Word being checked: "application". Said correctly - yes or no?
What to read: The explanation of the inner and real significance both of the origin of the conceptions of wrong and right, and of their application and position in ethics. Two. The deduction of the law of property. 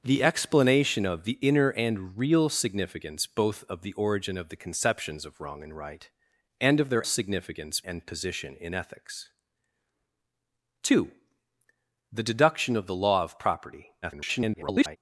no